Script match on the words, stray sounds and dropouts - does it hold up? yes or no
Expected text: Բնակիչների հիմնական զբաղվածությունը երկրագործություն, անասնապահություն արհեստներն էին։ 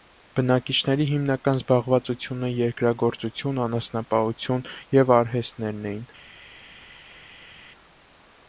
no